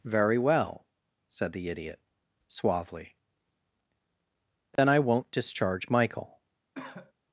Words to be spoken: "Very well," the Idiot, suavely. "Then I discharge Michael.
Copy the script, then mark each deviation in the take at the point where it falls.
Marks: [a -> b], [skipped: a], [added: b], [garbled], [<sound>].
"Very well," [added: said] the Idiot, suavely. "Then [dropout] I [added: won't] discharge Michael. [cough]